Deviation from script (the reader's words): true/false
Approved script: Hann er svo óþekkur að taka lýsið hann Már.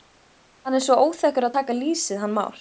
false